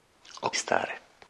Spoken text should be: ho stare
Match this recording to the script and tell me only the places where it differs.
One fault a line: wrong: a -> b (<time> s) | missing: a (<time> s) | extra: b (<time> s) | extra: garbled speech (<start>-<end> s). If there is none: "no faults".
no faults